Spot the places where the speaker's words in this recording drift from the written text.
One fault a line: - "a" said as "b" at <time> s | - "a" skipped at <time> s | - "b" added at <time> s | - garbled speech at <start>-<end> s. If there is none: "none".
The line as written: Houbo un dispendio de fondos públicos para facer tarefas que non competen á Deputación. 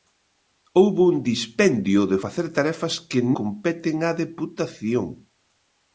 - "fondos públicos para" skipped at 2.2 s
- "non" skipped at 3.2 s